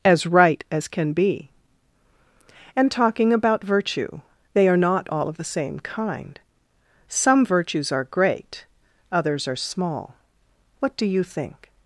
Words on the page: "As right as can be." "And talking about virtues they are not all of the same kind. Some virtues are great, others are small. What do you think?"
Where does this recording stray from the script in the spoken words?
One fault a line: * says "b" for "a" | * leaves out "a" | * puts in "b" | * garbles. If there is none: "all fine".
* says "virtue" for "virtues"